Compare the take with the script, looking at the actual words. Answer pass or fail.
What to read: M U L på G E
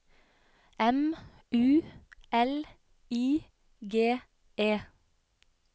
fail